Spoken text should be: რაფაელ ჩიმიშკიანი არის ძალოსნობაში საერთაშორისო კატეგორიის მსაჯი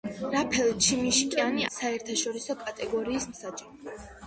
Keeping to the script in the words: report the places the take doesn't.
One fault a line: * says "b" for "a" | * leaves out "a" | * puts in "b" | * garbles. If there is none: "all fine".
* leaves out "არის ძალოსნობაში"